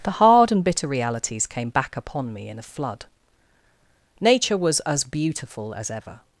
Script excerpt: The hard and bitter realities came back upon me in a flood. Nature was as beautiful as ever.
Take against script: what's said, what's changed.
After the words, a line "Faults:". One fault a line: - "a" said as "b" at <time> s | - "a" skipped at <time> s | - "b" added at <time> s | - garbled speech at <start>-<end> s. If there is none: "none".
The hard and bitter realities came back upon me in a flood. Nature was as beautiful as ever.
Faults:
none